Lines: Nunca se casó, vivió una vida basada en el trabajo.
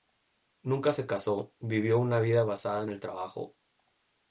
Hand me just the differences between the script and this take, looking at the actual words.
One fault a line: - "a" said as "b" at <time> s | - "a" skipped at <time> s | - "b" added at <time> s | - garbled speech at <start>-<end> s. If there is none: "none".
none